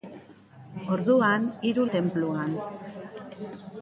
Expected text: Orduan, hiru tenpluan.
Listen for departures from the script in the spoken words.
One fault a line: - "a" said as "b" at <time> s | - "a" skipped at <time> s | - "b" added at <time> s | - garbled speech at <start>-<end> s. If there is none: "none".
none